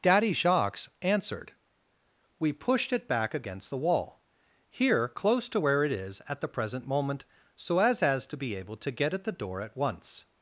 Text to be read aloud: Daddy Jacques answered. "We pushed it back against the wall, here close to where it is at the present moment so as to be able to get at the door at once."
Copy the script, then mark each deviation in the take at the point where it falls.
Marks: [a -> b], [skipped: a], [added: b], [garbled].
Daddy Jacques answered. "We pushed it back against the wall, here close to where it is at the present moment so as [added: as] to be able to get at the door at once."